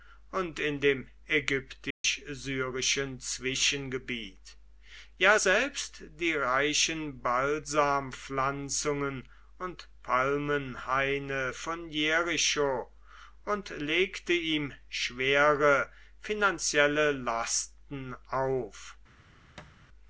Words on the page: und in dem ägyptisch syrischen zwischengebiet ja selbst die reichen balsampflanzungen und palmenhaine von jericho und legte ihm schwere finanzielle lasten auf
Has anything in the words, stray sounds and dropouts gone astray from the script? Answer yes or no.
yes